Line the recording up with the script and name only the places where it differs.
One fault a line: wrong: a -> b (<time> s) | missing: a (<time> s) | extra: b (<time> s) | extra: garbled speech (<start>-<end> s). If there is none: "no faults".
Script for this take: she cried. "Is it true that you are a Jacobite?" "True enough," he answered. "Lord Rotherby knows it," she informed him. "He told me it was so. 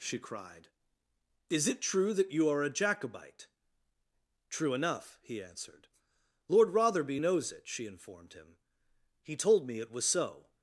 no faults